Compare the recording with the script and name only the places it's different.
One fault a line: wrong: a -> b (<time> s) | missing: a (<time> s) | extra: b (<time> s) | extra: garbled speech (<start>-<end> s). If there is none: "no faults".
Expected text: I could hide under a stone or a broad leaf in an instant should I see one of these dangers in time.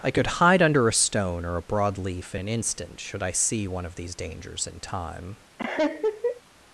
no faults